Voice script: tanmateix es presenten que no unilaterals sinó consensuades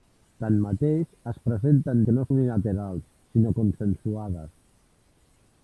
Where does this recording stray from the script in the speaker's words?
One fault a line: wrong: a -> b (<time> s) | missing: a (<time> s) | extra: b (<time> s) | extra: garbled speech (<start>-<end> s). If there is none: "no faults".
no faults